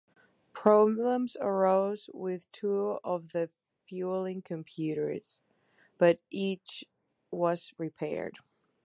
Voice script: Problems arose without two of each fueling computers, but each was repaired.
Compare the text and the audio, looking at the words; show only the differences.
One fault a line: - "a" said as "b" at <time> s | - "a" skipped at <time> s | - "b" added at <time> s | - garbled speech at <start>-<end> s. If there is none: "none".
- "without" said as "with" at 2.1 s
- "each" said as "the" at 3.3 s